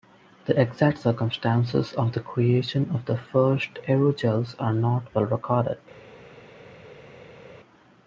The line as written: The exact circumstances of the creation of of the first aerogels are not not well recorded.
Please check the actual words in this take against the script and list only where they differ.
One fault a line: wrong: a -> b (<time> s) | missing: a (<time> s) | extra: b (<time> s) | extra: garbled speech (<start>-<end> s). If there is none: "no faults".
missing: of (3.1 s)
missing: not (5.1 s)